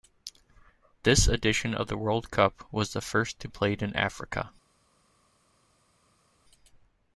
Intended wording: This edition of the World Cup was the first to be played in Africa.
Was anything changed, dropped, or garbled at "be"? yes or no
yes